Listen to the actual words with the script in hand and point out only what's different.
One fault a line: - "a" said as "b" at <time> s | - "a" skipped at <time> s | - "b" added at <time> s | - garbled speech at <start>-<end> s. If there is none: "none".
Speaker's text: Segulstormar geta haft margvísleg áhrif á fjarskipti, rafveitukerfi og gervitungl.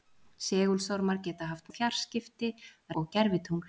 - "margvísleg áhrif" skipped at 1.7 s
- "rafveitukerfi" skipped at 2.5 s